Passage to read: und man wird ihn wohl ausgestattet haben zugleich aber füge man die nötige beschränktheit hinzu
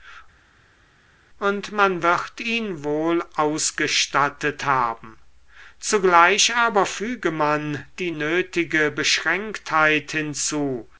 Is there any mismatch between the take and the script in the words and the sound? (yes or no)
no